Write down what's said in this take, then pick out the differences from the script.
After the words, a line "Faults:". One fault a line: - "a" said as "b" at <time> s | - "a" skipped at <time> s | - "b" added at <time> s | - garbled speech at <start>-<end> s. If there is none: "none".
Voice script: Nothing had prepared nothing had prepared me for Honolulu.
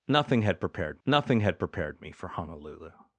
Nothing had prepared nothing had prepared me for Honolulu.
Faults:
none